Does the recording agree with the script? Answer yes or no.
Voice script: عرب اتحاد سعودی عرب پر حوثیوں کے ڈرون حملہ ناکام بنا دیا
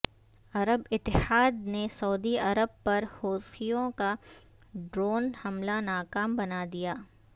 no